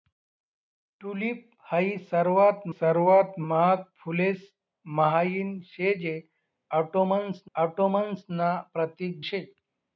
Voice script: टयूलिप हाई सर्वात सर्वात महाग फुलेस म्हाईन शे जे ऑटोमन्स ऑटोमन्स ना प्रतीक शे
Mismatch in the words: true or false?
false